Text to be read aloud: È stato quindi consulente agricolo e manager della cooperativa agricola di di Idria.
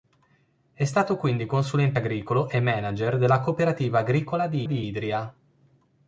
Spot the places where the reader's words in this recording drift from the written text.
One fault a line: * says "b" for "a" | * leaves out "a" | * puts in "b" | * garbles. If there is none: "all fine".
all fine